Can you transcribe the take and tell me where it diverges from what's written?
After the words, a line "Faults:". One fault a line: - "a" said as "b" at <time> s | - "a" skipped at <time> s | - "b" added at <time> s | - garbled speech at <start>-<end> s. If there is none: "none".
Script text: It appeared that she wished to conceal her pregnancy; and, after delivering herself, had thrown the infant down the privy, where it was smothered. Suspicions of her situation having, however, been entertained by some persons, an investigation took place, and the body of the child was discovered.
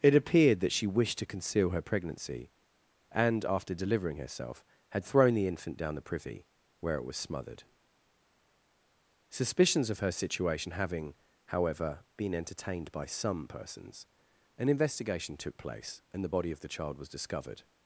It appeared that she wished to conceal her pregnancy; and, after delivering herself, had thrown the infant down the privy, where it was smothered. Suspicions of her situation having, however, been entertained by some persons, an investigation took place, and the body of the child was discovered.
Faults:
none